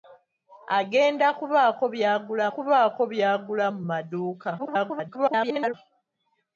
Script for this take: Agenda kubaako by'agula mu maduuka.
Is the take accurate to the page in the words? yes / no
no